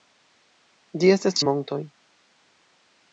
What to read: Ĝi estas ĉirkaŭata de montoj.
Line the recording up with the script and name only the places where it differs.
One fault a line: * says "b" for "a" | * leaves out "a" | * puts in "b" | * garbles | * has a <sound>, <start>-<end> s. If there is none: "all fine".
* leaves out "ĉirkaŭata"